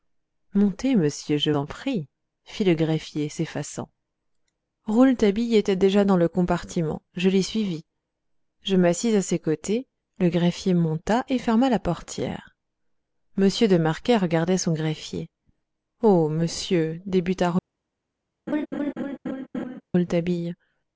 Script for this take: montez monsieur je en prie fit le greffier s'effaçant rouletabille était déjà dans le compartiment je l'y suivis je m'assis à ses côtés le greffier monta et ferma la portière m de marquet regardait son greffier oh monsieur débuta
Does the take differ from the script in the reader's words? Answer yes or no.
no